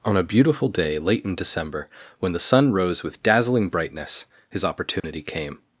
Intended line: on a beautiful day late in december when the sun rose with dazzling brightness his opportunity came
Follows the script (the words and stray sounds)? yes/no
no